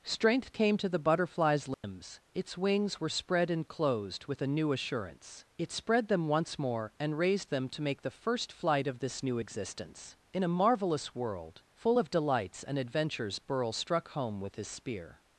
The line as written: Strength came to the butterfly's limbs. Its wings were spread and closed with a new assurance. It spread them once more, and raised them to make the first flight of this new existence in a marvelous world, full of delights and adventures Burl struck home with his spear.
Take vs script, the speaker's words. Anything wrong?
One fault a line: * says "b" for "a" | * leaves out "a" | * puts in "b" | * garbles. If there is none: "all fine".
all fine